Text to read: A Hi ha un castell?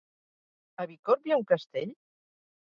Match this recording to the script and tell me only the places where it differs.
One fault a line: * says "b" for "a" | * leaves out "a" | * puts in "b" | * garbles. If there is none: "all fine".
* puts in "Bicorb"